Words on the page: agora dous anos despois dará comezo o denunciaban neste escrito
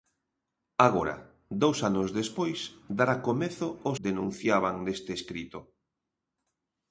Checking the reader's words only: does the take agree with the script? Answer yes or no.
yes